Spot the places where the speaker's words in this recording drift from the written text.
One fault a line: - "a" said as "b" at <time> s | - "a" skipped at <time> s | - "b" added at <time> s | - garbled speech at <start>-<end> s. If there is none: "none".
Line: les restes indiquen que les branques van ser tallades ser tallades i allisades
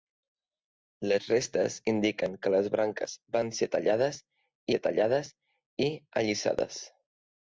none